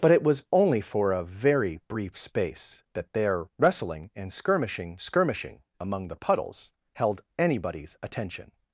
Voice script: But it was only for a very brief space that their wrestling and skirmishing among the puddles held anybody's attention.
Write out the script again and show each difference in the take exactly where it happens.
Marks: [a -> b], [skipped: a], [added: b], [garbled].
But it was only for a very brief space that their wrestling and skirmishing [added: skirmishing] among the puddles held anybody's attention.